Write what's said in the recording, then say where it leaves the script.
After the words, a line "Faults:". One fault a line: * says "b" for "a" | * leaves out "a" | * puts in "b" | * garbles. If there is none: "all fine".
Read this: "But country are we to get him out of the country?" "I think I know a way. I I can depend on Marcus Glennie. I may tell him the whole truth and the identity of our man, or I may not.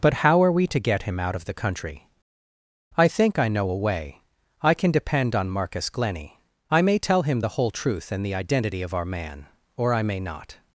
"But how are we to get him out of the country?" "I think I know a way. I can depend on Marcus Glennie. I may tell him the whole truth and the identity of our man, or I may not.
Faults:
* says "how" for "country"
* leaves out "I"